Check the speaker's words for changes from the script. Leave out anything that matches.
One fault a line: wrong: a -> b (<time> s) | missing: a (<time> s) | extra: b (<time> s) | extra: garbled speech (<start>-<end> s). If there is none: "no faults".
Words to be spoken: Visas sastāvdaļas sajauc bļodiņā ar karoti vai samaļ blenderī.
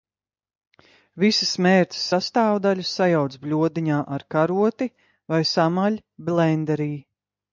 extra: mērces (1.6 s)